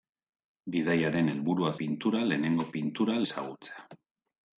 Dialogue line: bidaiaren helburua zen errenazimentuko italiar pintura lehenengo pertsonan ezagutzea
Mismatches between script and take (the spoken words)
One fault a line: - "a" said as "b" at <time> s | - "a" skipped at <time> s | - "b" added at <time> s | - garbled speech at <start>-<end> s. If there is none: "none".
- "zen errenazimentuko italiar" skipped at 1.7 s
- "pertsonan" said as "pintura" at 2.8 s